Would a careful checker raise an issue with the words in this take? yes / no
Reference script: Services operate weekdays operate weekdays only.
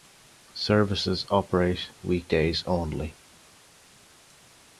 yes